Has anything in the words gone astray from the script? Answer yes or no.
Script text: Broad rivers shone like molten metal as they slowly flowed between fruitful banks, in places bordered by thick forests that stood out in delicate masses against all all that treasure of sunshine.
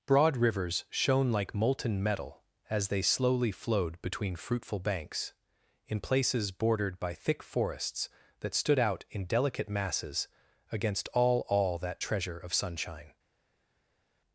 no